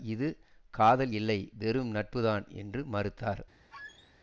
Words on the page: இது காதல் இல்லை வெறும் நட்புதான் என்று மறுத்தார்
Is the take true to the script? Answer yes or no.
yes